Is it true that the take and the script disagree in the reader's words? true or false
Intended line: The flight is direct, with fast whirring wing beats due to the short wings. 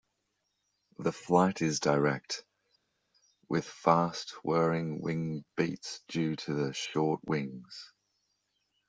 false